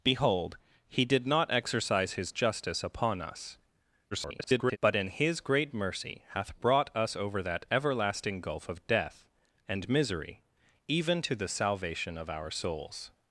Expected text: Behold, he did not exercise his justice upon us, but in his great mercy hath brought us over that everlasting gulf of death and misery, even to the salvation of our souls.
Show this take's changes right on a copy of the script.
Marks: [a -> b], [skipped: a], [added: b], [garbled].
Behold, he did not exercise his justice upon us, [garbled] but in his great mercy hath brought us over that everlasting gulf of death and misery, even to the salvation of our souls.